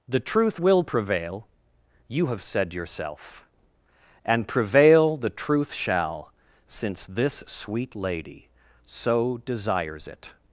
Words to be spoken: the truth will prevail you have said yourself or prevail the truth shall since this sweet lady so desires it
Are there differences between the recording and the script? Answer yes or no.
yes